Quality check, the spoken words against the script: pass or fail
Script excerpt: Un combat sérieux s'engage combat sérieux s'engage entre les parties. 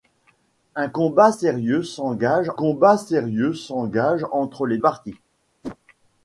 pass